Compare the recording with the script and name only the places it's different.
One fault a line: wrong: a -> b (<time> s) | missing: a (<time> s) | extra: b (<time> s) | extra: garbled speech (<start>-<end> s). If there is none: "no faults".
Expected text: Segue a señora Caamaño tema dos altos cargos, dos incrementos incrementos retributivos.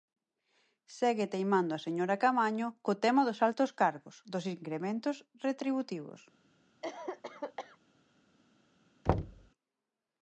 extra: teimando (1.3 s)
extra: co (2.9 s)
missing: incrementos (5.2 s)